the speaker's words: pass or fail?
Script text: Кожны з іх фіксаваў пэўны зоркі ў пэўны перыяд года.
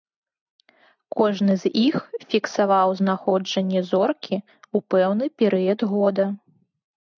fail